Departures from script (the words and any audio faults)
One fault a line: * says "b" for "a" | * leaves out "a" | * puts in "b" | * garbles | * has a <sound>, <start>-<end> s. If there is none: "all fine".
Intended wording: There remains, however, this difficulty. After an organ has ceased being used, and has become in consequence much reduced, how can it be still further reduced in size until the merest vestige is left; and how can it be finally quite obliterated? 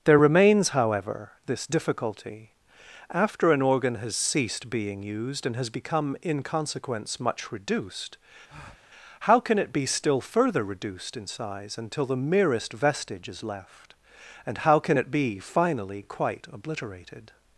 * has a breath, 8.5-8.9 s